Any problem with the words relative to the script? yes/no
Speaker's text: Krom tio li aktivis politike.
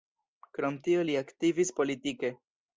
no